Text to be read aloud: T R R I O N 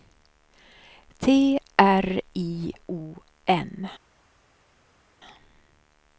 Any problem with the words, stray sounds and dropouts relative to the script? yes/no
yes